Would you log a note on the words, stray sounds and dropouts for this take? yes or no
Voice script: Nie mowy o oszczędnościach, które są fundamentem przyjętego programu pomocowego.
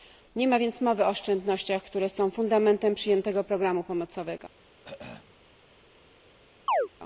yes